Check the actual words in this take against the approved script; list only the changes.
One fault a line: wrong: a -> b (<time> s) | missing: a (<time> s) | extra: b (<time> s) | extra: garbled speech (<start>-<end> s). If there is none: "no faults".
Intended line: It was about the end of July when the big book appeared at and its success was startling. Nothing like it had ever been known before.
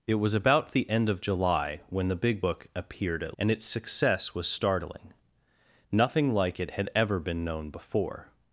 no faults